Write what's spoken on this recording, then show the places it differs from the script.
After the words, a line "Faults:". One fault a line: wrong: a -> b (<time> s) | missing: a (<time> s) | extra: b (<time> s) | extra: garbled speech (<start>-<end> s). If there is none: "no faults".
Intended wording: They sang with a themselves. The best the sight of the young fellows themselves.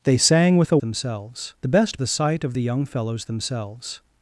They sang with a themselves. The best the sight of the young fellows themselves.
Faults:
no faults